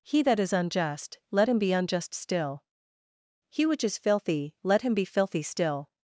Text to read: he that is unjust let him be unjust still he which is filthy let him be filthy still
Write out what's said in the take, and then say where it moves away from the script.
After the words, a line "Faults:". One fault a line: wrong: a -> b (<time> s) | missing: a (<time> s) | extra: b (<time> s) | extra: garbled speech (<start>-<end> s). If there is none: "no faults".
he that is unjust let him be unjust still he which is filthy let him be filthy still
Faults:
no faults